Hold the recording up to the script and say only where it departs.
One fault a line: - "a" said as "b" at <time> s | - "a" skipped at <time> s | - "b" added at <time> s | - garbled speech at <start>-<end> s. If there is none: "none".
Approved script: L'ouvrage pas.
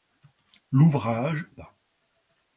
none